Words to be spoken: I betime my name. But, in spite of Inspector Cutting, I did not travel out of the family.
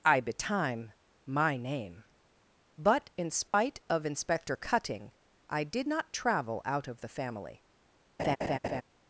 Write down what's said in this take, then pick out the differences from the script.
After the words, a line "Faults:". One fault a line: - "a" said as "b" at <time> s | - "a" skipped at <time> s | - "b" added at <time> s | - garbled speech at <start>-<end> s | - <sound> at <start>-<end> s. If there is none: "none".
I betime my name. But, in spite of Inspector Cutting, I did not travel out of the family.
Faults:
- dropout at 3.5-3.5 s
- laugh at 8.2-8.8 s